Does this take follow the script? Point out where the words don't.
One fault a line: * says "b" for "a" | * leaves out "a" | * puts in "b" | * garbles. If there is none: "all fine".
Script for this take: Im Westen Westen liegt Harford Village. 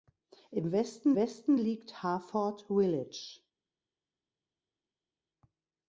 all fine